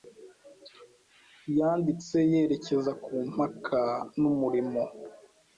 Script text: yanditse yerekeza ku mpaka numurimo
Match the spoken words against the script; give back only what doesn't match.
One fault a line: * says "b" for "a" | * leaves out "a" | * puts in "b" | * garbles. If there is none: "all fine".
all fine